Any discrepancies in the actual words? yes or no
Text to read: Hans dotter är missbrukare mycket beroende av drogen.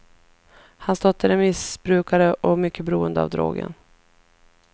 yes